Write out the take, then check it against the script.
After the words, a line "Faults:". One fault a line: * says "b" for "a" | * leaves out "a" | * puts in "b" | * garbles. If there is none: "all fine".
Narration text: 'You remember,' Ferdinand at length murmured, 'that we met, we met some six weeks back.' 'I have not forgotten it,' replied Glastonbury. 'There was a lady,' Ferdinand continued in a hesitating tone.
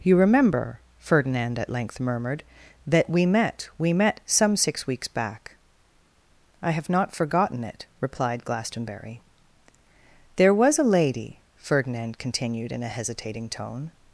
'You remember,' Ferdinand at length murmured, 'that we met, we met some six weeks back.' 'I have not forgotten it,' replied Glastonbury. 'There was a lady,' Ferdinand continued in a hesitating tone.
Faults:
all fine